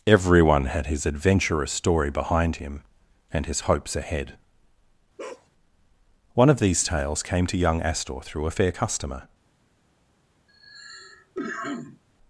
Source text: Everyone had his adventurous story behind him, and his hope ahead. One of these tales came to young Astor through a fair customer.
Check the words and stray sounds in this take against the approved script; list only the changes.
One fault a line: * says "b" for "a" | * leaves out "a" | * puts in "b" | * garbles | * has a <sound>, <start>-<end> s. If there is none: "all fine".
* says "hopes" for "hope"
* has a bark, 5.2-5.5 s
* has a cough, 10.5-12.0 s